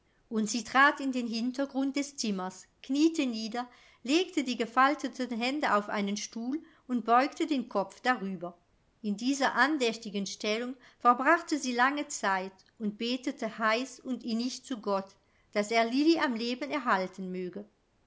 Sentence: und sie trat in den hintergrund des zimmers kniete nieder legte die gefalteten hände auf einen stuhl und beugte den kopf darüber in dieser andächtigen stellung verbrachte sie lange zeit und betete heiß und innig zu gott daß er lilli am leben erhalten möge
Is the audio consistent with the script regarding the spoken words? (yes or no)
yes